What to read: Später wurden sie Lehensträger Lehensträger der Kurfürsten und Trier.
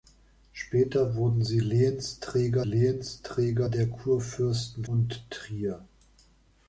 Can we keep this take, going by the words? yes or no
yes